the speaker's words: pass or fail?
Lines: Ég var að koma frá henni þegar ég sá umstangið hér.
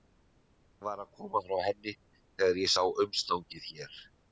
pass